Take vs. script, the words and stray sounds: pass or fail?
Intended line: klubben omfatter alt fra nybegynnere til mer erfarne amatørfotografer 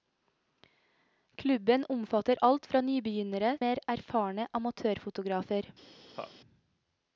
fail